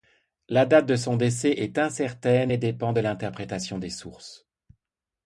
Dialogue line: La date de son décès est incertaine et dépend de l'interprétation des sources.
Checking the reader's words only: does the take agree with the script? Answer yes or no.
yes